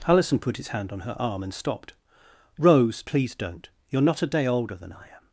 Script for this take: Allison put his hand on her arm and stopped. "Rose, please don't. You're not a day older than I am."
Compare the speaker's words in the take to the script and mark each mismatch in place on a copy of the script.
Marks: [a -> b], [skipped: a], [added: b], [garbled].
Allison put his hand on her arm and stopped. "Rose, please don't. You're not a day older than I am."